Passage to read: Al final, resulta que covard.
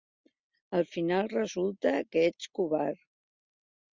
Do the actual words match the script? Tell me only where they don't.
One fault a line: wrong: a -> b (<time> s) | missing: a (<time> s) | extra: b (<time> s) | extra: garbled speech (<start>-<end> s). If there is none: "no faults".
extra: ets (2.3 s)